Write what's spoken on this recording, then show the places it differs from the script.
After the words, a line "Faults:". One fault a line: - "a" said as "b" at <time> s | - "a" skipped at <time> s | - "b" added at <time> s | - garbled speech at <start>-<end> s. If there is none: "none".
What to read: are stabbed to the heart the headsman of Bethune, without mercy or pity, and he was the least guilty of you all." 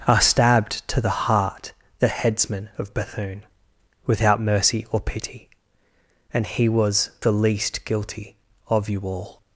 are stabbed to the heart the headsman of Bethune, without mercy or pity, and he was the least guilty of you all."
Faults:
none